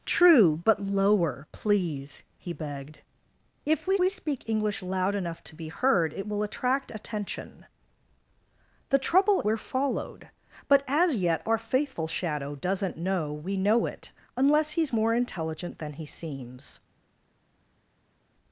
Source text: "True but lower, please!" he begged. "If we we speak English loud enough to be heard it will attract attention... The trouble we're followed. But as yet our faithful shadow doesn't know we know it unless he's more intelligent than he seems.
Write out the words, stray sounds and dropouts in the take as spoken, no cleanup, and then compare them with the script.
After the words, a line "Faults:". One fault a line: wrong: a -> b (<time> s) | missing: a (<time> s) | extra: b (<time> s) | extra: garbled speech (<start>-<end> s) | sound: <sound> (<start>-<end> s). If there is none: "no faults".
"True but lower, please!" he begged. "If we we speak English loud enough to be heard it will attract attention... The trouble we're followed. But as yet our faithful shadow doesn't know we know it unless he's more intelligent than he seems.
Faults:
no faults